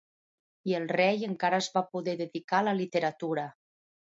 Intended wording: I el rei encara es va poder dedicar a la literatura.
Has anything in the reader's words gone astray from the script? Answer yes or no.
no